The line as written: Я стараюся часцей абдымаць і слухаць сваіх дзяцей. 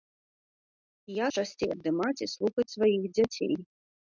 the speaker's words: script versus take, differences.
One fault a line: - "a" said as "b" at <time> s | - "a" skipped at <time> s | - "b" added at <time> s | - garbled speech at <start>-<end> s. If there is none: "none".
- "стараюся" skipped at 1.3 s